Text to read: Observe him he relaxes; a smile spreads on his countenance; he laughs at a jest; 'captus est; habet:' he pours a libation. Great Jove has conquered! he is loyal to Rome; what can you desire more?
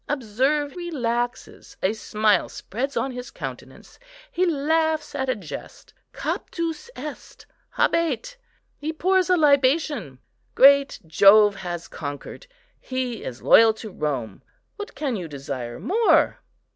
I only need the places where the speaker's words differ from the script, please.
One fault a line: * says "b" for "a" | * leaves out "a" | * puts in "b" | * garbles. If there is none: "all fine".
* leaves out "him he"